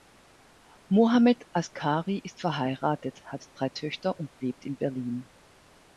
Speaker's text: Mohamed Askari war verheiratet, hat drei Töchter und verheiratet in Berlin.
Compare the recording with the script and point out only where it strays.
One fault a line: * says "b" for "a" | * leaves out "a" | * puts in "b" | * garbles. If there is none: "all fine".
* says "ist" for "war"
* says "lebt" for "verheiratet"